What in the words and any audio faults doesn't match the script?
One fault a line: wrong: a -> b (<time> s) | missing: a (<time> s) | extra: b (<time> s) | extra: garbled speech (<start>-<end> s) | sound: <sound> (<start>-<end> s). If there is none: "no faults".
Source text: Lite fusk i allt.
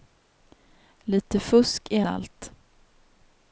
no faults